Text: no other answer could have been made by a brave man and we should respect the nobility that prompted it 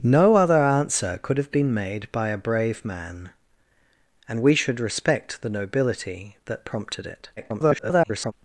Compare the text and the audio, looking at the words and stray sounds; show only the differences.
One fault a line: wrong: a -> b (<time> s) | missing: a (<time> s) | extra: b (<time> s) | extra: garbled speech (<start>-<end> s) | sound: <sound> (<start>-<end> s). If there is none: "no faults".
extra: garbled speech (7.4-8.3 s)